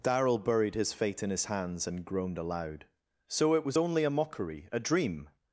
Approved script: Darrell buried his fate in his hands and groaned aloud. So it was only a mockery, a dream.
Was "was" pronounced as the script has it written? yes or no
yes